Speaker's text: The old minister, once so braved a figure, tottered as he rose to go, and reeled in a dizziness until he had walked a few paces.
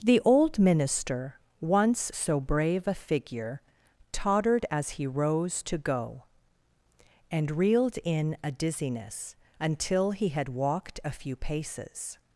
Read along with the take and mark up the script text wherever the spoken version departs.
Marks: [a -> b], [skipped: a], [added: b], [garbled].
The old minister, once so [braved -> brave] a figure, tottered as he rose to go, and reeled in a dizziness until he had walked a few paces.